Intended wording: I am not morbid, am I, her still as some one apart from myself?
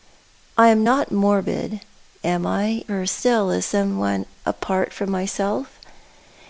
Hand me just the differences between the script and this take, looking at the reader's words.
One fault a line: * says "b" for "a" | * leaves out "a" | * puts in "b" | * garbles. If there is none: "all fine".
all fine